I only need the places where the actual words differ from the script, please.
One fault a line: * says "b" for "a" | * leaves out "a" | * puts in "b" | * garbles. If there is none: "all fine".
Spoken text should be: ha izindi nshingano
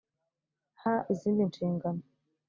all fine